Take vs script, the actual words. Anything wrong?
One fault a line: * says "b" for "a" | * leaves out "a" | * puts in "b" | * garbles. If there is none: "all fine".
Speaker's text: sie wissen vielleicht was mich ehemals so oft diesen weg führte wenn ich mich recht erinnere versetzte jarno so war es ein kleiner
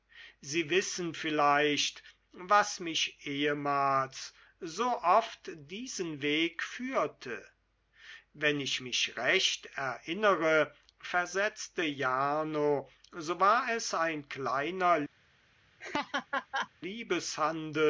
all fine